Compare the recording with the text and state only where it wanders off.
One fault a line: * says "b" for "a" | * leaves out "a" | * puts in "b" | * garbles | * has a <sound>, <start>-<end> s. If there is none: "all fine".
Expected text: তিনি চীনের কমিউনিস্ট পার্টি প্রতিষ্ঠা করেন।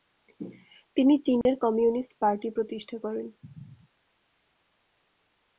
* has a dropout, 1.4-1.5 s